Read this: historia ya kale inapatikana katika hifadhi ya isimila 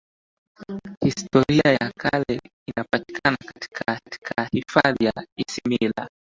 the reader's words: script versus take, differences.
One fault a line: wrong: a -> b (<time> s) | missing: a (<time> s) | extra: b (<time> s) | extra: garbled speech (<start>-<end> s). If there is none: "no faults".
extra: katika (4.0 s)